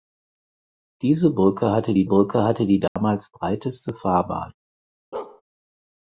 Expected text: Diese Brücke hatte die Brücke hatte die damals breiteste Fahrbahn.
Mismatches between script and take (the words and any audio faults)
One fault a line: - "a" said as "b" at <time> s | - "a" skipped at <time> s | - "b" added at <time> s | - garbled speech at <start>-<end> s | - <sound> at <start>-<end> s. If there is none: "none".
- dropout at 2.9-3.0 s
- bark at 5.1-5.4 s